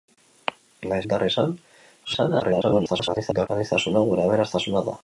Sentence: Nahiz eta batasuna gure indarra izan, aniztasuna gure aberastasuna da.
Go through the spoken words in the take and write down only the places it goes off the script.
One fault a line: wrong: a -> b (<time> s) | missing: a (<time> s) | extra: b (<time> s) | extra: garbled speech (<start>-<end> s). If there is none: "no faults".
missing: eta batasuna gure (1.0 s)
extra: garbled speech (2.0-3.5 s)